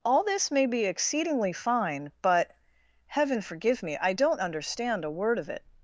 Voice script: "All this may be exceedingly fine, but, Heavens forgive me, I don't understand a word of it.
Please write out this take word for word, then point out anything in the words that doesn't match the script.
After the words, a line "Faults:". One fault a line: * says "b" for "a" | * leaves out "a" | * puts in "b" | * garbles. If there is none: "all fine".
"All this may be exceedingly fine, but, Heaven forgive me, I don't understand a word of it.
Faults:
* says "Heaven" for "Heavens"